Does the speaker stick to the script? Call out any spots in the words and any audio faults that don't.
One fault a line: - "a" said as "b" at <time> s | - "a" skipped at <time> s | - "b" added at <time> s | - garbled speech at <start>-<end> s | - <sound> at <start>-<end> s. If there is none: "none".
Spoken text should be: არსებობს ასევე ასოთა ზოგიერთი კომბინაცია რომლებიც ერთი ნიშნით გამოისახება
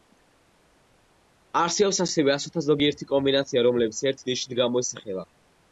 none